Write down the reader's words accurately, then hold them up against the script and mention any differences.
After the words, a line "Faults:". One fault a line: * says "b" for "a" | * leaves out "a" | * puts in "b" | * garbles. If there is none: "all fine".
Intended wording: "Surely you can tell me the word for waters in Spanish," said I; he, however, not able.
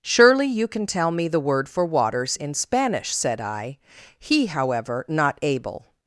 "Surely you can tell me the word for waters in Spanish," said I; he, however, not able.
Faults:
all fine